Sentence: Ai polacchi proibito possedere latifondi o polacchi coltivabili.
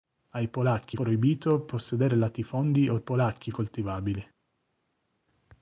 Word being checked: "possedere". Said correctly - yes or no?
yes